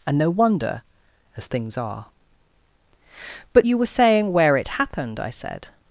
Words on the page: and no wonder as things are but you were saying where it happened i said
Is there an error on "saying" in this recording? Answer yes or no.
no